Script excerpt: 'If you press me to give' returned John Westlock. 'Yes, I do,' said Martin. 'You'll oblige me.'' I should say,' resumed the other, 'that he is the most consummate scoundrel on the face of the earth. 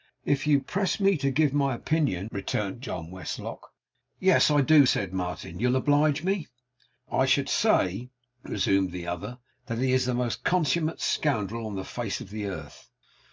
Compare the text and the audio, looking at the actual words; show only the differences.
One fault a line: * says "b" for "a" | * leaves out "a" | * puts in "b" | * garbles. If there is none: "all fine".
* puts in "my opinion"